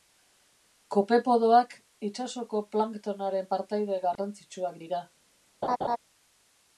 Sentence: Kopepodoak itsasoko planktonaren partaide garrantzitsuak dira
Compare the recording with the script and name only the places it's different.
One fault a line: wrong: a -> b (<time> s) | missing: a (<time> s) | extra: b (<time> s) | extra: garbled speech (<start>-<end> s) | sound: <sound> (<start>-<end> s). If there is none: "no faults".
sound: dropout (4.2-4.2 s)
sound: laugh (5.6-6.0 s)